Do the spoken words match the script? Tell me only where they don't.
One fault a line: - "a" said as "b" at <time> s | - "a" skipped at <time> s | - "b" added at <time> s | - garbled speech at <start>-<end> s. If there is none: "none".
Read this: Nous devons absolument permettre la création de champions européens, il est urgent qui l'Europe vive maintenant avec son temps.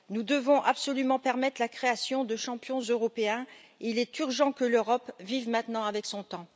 - "qui" said as "que" at 4.5 s